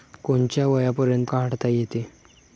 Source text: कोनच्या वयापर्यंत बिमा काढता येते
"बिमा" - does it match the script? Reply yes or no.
no